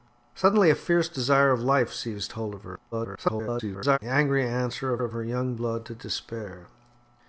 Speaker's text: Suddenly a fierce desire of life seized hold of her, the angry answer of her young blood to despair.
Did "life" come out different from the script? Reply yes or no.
no